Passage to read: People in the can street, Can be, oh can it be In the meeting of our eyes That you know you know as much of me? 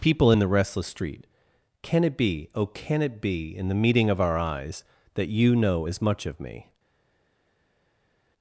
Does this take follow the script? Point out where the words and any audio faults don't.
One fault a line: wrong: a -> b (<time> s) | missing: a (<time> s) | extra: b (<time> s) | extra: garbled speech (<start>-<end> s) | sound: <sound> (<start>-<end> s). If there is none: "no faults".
wrong: can -> restless (0.5 s)
extra: it (2.0 s)
missing: you know (5.9 s)